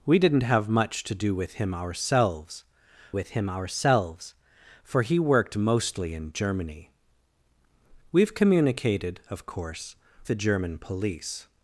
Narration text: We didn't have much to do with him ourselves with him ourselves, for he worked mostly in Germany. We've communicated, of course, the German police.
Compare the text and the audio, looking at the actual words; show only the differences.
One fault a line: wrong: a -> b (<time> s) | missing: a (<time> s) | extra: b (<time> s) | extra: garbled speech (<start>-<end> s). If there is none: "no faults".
no faults